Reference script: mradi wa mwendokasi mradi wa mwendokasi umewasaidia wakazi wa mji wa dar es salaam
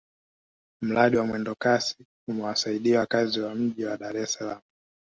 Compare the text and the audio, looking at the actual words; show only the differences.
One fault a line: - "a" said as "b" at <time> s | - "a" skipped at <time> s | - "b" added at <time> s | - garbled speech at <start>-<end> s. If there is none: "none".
- "mradi wa mwendokasi" skipped at 2.0 s